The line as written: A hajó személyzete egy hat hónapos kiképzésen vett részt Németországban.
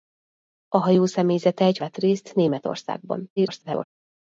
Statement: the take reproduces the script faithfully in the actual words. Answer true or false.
false